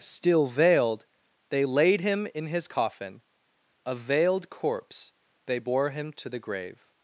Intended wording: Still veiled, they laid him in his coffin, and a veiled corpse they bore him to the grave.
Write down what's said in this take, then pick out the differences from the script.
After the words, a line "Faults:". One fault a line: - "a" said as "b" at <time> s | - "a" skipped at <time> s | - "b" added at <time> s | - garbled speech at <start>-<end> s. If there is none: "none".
Still veiled, they laid him in his coffin, a veiled corpse they bore him to the grave.
Faults:
- "and" skipped at 3.2 s